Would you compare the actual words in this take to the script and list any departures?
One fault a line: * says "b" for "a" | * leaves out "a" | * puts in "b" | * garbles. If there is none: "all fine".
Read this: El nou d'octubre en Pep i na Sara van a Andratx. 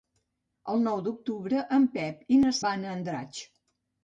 * leaves out "Sara"